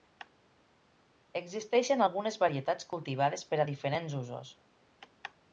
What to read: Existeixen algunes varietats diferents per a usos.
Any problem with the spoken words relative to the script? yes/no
yes